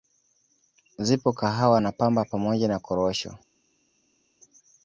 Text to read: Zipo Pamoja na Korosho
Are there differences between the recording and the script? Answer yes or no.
yes